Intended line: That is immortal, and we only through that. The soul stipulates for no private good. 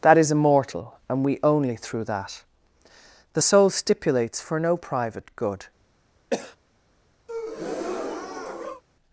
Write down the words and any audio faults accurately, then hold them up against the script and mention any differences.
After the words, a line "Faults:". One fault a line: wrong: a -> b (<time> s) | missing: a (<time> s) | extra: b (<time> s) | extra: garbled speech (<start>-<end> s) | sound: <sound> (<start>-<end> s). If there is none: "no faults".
That is immortal, and we only through that. The soul stipulates for no private good.
Faults:
sound: cough (6.3-6.6 s)
sound: breath (7.3-8.8 s)